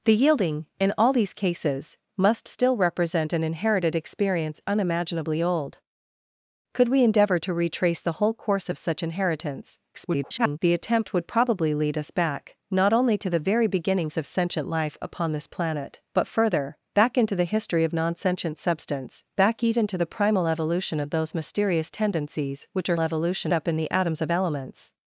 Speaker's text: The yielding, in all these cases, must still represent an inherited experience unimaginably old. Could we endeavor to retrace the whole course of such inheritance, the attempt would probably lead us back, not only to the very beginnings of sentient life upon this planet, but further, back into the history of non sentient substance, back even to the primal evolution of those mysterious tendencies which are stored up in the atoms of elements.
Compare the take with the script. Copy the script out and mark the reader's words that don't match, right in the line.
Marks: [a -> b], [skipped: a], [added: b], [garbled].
The yielding, in all these cases, must still represent an inherited experience unimaginably old. Could we endeavor to retrace the whole course of such inheritance, [garbled] the attempt would probably lead us back, not only to the very beginnings of sentient life upon this planet, but further, back into the history of non sentient substance, back even to the primal evolution of those mysterious tendencies which are [stored -> evolution] up in the atoms of elements.